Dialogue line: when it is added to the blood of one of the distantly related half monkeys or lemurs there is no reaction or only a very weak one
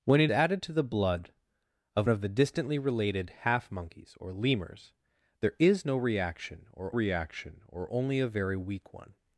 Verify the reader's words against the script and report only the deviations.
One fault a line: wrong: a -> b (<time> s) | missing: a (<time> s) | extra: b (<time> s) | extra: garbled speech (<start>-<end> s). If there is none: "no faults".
missing: is (0.3 s)
missing: one (2.1 s)
extra: reaction or (6.9 s)